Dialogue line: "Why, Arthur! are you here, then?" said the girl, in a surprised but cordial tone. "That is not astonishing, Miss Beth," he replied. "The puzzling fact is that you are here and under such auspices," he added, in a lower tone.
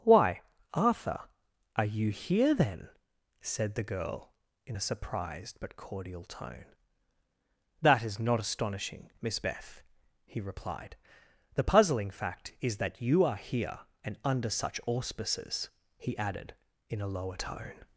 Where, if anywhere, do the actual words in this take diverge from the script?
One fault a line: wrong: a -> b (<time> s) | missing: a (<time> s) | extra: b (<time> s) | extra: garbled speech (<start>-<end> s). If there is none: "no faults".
no faults